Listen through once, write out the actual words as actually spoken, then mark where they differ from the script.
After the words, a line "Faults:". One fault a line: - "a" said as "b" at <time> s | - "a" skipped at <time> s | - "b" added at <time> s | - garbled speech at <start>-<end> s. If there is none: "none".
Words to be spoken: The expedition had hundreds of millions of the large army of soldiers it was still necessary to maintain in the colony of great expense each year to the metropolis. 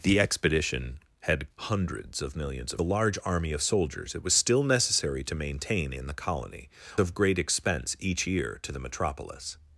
The expedition had hundreds of millions of the large army of soldiers it was still necessary to maintain in the colony of great expense each year to the metropolis.
Faults:
none